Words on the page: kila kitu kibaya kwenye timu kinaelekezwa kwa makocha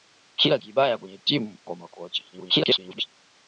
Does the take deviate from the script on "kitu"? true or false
true